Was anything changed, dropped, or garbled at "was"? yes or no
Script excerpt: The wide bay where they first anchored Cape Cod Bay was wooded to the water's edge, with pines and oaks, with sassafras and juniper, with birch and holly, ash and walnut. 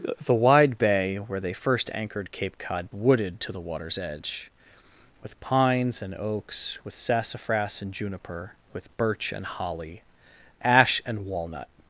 yes